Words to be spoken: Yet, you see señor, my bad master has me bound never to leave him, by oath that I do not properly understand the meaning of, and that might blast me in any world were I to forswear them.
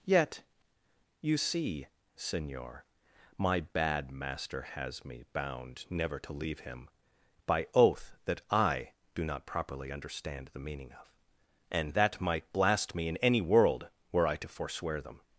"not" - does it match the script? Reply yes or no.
yes